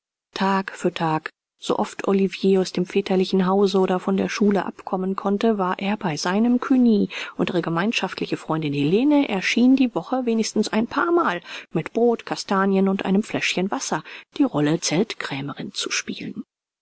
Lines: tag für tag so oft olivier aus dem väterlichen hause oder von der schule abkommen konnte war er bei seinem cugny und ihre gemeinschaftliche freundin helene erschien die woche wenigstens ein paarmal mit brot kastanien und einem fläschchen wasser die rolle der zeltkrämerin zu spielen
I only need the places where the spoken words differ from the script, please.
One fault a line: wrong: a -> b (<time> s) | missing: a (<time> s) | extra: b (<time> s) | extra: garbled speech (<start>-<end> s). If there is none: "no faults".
missing: der (14.8 s)